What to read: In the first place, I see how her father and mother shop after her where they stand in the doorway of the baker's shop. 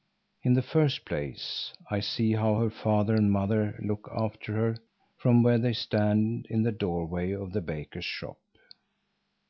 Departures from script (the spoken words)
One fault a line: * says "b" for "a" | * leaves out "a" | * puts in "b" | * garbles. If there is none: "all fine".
* says "look" for "shop"
* puts in "from"